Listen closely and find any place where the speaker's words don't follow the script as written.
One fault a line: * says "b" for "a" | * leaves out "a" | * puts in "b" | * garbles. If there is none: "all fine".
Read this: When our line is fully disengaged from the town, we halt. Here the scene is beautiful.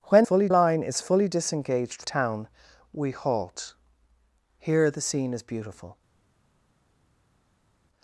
* says "fully" for "our"
* leaves out "from the"